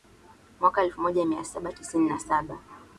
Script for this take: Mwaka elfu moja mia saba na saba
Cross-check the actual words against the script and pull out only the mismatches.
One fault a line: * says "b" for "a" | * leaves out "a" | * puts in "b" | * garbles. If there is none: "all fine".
* puts in "tisini"